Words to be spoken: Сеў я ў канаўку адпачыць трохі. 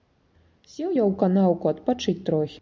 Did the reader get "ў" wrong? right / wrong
right